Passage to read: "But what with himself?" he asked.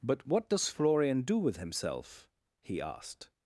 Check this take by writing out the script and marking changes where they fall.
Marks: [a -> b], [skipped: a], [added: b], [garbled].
"But what [added: does Florian do] with himself?" he asked.